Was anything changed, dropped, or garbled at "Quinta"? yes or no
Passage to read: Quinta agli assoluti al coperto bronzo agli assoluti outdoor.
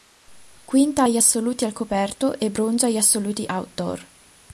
no